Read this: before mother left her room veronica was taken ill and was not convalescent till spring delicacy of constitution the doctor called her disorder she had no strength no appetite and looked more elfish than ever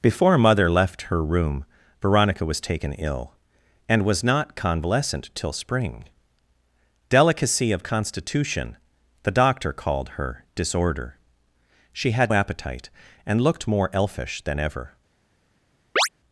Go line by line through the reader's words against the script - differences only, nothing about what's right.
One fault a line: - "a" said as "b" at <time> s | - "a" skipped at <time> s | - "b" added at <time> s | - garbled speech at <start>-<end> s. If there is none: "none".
- "no strength no" skipped at 12.3 s